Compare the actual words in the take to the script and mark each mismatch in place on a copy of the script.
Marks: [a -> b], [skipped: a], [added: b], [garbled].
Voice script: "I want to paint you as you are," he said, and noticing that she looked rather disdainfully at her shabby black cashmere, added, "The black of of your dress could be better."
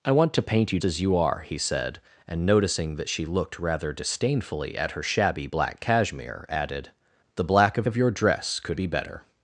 "I want to paint you as you are," he said, and noticing that she looked rather disdainfully at her shabby black cashmere, added, "The black of of your dress could be better."